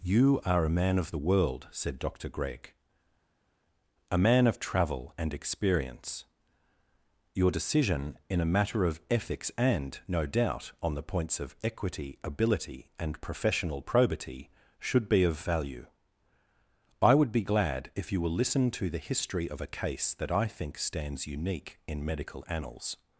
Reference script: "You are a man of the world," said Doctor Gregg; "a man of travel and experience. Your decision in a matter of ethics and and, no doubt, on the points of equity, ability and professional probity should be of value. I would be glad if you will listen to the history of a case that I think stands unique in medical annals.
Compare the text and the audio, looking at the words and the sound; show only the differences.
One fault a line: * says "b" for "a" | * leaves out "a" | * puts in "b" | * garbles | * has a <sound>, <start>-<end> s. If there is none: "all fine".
* leaves out "and"